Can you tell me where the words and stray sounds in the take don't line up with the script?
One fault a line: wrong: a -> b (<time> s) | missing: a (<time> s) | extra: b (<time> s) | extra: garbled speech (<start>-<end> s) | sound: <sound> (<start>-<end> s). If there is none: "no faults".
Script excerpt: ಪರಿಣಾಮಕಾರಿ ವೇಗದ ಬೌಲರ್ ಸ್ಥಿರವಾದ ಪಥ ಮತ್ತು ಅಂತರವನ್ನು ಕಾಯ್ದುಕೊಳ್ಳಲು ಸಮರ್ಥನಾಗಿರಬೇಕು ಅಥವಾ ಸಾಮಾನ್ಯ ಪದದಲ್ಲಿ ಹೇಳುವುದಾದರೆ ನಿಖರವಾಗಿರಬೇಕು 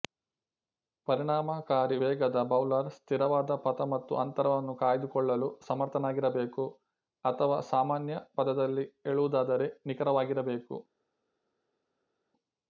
no faults